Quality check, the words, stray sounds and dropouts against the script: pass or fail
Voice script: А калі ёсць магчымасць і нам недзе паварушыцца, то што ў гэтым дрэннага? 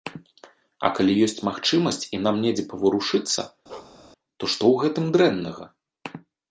fail